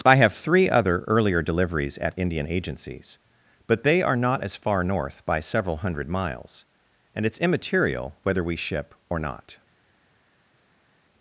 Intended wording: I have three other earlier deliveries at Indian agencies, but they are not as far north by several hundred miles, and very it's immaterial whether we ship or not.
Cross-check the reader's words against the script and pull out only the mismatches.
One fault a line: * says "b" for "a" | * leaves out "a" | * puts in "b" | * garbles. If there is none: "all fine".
* leaves out "very"